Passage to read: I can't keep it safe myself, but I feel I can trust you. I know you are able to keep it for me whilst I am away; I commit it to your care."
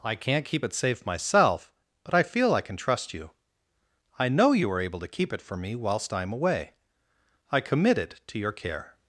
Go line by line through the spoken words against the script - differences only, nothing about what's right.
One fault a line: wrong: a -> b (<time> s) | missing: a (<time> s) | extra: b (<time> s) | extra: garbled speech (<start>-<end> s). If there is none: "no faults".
no faults